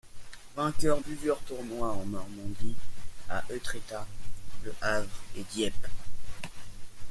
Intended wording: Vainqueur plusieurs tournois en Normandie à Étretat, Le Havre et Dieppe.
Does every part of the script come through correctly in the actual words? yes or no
yes